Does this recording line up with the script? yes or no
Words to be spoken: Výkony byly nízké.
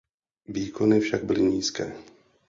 no